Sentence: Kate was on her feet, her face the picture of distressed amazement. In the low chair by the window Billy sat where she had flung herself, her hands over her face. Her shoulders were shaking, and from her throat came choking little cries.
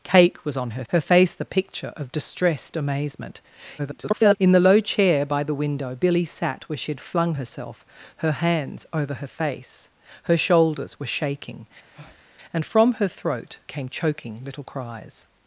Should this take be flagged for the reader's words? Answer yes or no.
yes